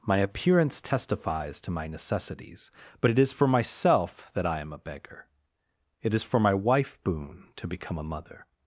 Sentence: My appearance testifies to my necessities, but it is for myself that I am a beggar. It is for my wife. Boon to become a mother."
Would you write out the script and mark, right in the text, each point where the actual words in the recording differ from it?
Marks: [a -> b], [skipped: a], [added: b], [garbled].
My appearance testifies to my necessities, but it is for myself that I am a beggar. It is for my wife. Boon to become a mother."